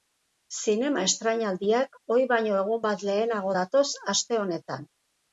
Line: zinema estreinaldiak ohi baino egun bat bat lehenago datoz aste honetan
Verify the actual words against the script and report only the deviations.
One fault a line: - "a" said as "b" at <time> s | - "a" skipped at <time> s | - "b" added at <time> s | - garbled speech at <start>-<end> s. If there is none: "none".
- "bat" skipped at 3.0 s